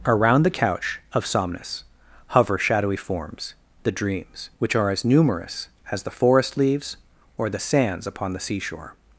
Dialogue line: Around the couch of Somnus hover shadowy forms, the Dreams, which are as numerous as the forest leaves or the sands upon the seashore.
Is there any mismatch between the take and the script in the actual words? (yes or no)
no